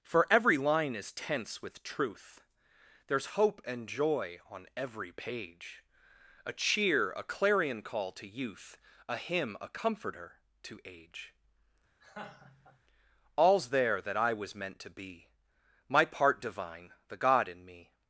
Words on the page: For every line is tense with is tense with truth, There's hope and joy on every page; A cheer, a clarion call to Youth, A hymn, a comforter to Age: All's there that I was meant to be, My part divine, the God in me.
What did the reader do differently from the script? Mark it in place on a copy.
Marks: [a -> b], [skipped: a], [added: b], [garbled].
For every line is tense with [skipped: is tense with] truth, There's hope and joy on every page; A cheer, a clarion call to Youth, A hymn, a comforter to Age: All's there that I was meant to be, My part divine, the God in me.